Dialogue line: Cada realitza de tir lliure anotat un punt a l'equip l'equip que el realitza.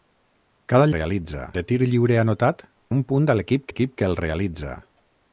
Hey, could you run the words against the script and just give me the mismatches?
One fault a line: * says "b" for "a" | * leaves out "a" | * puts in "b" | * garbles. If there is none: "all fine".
all fine